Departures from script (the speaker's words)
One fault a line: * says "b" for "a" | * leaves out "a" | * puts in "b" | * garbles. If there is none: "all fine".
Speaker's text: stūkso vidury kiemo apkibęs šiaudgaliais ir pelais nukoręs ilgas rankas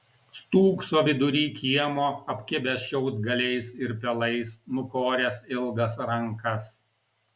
all fine